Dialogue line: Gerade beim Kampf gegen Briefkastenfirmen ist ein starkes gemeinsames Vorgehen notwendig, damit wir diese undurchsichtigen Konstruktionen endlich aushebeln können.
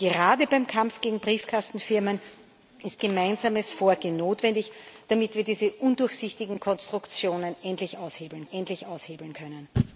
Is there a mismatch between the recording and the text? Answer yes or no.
yes